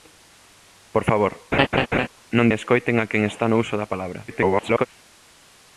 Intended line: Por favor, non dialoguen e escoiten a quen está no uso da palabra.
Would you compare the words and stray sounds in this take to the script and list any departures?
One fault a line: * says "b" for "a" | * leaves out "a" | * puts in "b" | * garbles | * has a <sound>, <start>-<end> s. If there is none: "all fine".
* has a laugh, 1.5-2.1 s
* leaves out "dialoguen"
* garbles